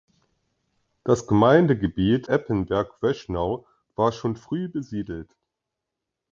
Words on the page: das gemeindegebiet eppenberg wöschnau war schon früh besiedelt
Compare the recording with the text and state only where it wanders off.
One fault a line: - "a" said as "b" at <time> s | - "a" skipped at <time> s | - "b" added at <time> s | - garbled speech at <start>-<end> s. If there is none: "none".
none